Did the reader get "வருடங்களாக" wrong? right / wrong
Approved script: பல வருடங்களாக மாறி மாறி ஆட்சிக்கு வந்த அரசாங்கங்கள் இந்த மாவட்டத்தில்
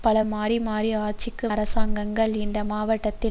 wrong